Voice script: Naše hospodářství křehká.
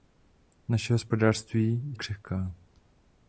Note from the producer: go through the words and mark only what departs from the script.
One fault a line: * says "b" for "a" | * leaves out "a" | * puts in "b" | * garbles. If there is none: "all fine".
all fine